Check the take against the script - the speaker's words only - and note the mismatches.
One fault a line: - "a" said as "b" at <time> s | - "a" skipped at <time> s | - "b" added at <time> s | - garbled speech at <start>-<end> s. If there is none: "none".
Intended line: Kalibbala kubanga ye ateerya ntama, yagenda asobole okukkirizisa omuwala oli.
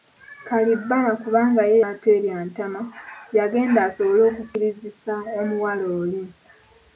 none